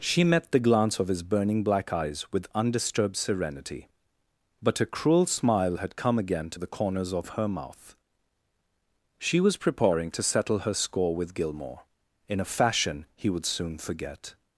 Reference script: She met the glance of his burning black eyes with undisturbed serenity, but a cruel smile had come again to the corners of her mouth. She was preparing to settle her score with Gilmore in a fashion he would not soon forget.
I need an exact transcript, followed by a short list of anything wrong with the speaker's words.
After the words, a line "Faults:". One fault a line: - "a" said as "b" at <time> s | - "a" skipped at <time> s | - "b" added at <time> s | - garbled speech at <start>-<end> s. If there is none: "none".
She met the glance of his burning black eyes with undisturbed serenity, but a cruel smile had come again to the corners of her mouth. She was preparing to settle her score with Gilmore in a fashion he would soon forget.
Faults:
- "not" skipped at 13.4 s